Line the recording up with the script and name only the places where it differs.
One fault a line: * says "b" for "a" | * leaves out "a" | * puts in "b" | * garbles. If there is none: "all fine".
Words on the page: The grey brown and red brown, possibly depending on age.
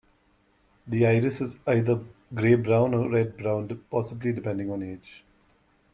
* puts in "iris is either"
* says "or" for "and"